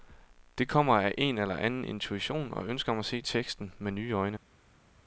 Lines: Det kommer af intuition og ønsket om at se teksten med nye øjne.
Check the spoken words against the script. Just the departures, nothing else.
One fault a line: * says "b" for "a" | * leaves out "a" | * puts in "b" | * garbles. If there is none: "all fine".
* puts in "en eller anden"